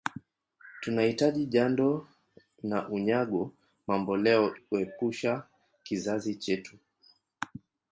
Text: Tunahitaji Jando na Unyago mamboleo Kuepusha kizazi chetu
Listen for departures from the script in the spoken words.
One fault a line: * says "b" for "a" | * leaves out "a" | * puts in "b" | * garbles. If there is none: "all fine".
all fine